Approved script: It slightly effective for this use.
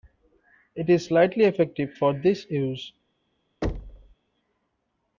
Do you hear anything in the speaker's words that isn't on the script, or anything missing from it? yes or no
yes